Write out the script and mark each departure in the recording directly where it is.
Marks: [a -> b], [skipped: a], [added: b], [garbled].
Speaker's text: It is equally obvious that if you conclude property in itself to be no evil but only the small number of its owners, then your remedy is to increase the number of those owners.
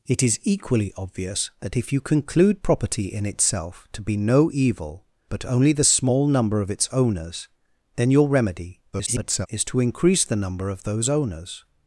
It is equally obvious that if you conclude property in itself to be no evil but only the small number of its owners, then your remedy [garbled] is to increase the number of those owners.